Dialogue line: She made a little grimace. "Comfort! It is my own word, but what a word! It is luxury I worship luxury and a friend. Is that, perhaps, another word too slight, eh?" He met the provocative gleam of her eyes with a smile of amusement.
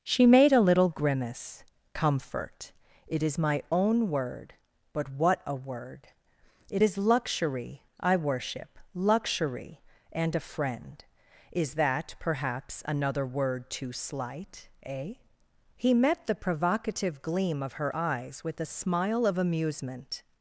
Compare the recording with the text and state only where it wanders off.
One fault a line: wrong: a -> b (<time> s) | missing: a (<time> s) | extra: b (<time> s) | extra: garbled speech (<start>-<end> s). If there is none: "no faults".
no faults